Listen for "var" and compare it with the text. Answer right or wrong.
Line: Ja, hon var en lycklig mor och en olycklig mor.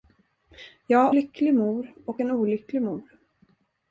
wrong